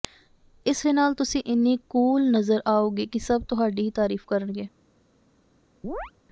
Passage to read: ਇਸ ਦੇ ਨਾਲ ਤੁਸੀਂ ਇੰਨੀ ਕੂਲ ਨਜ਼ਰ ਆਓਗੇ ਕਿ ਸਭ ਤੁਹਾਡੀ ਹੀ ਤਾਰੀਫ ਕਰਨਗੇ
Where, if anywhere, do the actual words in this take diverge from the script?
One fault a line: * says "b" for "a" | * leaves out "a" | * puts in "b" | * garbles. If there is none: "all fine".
all fine